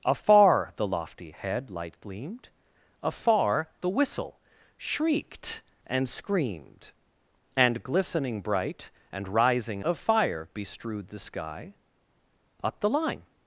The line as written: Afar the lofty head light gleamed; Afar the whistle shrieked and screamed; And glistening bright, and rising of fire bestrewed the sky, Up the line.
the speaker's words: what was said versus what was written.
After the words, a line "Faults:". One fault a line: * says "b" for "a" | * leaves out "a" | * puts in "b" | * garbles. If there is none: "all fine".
Afar the lofty head light gleamed; Afar the whistle shrieked and screamed; And glistening bright, and rising of fire bestrewed the sky, Up the line.
Faults:
all fine